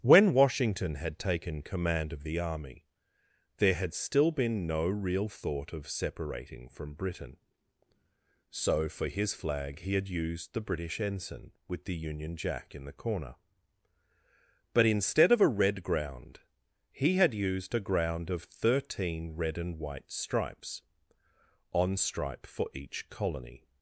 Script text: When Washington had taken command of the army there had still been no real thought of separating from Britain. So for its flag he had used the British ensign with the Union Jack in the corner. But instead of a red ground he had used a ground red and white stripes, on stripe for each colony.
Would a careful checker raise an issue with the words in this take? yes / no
yes